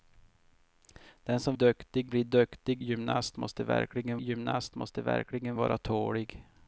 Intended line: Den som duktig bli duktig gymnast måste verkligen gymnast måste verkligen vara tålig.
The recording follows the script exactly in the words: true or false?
true